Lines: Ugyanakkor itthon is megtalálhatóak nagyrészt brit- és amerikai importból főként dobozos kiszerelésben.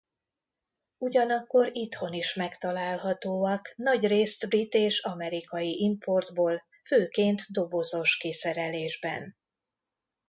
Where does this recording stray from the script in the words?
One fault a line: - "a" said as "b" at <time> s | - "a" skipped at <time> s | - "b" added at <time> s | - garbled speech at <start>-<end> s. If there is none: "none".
none